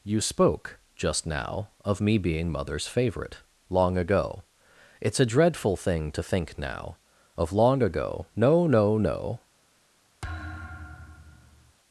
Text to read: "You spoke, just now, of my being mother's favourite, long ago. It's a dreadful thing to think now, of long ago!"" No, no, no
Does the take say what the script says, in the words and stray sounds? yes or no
no